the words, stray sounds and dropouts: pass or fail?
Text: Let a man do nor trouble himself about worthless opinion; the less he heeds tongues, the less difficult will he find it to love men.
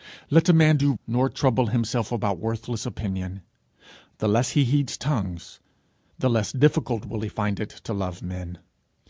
pass